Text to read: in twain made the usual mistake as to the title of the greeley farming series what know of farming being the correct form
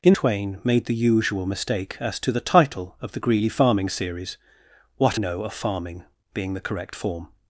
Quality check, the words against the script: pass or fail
pass